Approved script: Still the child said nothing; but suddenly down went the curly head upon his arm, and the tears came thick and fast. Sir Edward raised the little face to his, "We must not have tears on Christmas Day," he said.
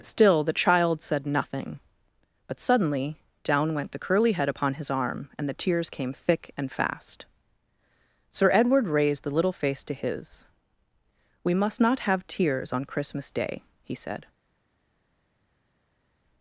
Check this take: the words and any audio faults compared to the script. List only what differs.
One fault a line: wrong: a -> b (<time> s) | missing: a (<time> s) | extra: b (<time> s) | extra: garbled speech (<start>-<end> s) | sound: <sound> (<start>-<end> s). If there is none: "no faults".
no faults